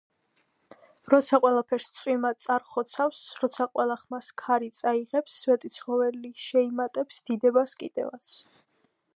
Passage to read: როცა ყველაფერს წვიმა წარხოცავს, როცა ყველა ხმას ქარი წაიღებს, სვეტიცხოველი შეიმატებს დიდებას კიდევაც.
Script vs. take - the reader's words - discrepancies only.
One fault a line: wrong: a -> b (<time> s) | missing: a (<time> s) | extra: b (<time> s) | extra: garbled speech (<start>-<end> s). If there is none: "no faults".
no faults